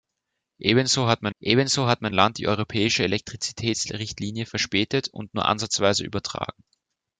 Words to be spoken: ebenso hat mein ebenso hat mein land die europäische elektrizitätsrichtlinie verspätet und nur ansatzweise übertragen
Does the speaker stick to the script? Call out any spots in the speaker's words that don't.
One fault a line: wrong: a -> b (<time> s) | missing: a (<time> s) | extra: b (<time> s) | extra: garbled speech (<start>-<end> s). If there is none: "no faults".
no faults